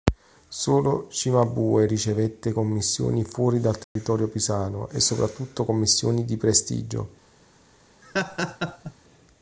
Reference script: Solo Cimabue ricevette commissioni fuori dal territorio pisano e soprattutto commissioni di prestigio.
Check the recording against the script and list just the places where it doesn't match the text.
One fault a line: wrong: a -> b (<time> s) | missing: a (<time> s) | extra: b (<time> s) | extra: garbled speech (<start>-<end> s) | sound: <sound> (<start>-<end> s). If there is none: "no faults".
sound: dropout (3.8-4.0 s)
sound: laugh (8.0-8.9 s)